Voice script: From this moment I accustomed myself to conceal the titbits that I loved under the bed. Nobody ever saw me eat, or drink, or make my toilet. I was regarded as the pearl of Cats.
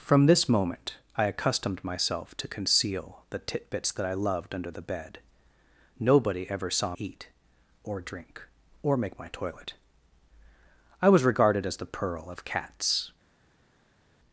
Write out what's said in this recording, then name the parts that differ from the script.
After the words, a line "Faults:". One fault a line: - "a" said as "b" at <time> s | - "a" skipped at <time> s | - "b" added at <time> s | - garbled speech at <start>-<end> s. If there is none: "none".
From this moment I accustomed myself to conceal the titbits that I loved under the bed. Nobody ever saw eat, or drink, or make my toilet. I was regarded as the pearl of Cats.
Faults:
- "me" skipped at 7.0 s